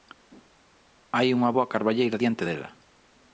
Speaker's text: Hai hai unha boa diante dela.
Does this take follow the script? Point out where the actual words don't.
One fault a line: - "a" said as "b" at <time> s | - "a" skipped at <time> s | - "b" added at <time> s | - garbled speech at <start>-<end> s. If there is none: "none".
- "hai" skipped at 1.3 s
- "carballeira" added at 1.7 s